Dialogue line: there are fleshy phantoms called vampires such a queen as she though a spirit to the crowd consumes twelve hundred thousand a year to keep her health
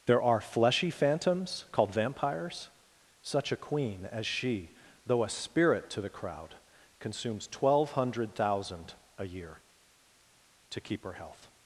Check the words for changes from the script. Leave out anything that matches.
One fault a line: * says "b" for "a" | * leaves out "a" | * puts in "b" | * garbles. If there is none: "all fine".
all fine